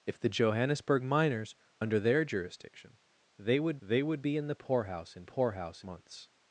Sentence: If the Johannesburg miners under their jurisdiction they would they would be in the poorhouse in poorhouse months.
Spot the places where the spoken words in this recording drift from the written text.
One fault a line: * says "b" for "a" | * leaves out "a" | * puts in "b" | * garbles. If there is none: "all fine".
all fine